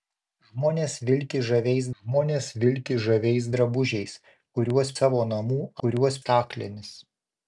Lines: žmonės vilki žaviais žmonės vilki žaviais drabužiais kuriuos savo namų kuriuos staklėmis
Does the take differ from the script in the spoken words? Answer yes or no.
no